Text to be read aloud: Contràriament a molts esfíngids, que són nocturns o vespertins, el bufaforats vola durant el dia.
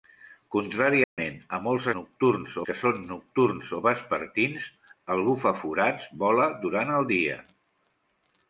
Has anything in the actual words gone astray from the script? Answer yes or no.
yes